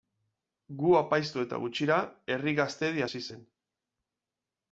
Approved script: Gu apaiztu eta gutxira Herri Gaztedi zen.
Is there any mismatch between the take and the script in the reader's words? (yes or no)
yes